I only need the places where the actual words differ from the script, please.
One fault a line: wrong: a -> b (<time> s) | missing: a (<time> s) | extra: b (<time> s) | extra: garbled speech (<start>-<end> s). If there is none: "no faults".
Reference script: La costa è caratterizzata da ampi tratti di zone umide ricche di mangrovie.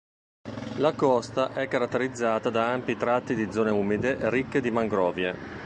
no faults